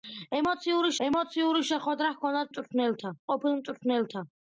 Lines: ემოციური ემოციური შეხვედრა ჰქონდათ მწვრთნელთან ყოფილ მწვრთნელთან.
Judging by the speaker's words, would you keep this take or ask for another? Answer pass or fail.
pass